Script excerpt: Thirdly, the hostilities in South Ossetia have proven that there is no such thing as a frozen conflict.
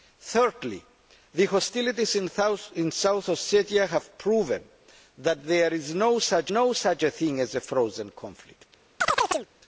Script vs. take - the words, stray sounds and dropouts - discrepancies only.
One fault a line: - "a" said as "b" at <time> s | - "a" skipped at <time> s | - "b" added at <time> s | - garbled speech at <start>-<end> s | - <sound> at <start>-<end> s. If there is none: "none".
- "no such" added at 6.5 s
- chirp at 9.0-9.5 s